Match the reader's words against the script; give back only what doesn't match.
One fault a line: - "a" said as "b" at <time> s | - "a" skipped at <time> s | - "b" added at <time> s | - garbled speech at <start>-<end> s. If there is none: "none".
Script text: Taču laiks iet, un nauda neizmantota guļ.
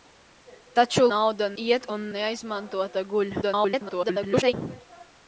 - "laiks" said as "nauda" at 1.1 s
- "nauda" skipped at 2.0 s
- garbled speech at 3.4-4.5 s